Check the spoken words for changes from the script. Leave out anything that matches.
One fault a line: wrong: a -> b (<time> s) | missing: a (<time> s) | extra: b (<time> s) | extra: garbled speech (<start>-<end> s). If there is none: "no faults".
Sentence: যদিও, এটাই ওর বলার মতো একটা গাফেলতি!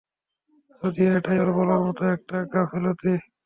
no faults